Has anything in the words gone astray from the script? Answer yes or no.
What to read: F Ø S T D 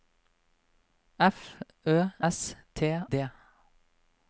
no